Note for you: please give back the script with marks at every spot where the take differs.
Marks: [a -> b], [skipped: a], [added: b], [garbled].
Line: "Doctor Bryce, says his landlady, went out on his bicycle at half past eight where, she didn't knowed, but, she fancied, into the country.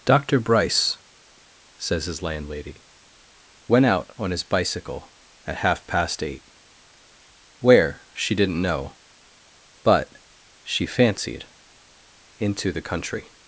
"Doctor Bryce, says his landlady, went out on his bicycle at half past eight where, she didn't [knowed, -> know] but, she fancied, into the country.